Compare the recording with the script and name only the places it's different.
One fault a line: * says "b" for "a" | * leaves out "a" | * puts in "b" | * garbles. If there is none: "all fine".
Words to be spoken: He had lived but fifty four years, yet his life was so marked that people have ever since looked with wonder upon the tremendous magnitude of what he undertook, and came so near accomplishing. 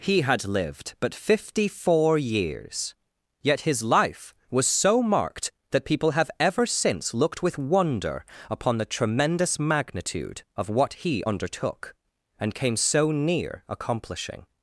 all fine